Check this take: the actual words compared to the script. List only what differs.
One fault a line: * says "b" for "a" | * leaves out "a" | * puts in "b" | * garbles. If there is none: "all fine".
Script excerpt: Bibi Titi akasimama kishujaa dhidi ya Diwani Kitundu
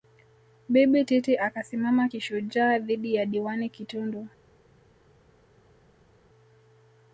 all fine